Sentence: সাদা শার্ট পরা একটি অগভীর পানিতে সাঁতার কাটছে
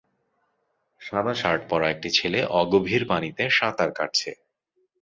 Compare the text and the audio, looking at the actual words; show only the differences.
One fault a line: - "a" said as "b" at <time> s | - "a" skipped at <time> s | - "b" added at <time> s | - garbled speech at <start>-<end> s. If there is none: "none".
- "ছেলে" added at 2.2 s